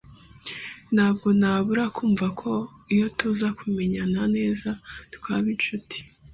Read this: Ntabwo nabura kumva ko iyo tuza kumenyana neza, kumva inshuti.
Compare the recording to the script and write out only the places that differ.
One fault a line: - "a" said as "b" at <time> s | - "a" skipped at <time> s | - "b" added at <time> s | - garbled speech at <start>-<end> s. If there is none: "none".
- "kumva" said as "twaba" at 5.1 s